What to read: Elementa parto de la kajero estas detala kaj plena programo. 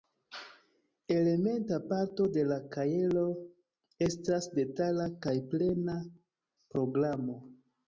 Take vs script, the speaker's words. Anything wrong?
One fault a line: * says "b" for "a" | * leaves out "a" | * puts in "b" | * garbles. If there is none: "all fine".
all fine